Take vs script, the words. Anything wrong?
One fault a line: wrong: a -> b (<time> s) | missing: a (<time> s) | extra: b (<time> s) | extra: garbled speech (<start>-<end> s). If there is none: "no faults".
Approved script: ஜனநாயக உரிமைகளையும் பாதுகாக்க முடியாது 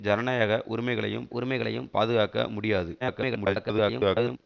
extra: உரிமைகளையும் (1.3 s)
extra: garbled speech (3.0-4.4 s)